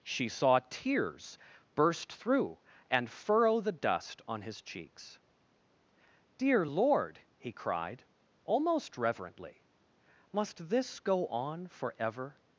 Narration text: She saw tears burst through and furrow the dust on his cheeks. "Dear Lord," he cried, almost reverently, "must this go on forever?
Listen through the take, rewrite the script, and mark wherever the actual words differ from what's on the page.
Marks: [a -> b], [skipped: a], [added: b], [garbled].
She saw tears burst through and furrow the dust on his cheeks. "Dear Lord," he cried, almost reverently, "must this go on forever?